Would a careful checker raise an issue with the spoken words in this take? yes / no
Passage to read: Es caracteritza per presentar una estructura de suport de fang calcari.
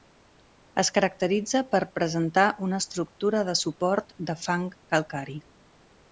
no